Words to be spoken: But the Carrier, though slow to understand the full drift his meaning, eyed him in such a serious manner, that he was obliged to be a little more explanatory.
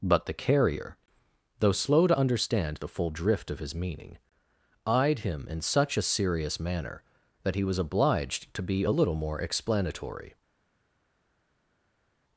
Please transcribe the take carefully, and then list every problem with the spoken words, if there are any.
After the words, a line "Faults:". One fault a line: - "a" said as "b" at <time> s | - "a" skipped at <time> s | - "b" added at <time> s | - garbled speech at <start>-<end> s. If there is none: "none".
But the Carrier, though slow to understand the full drift of his meaning, eyed him in such a serious manner, that he was obliged to be a little more explanatory.
Faults:
- "of" added at 3.5 s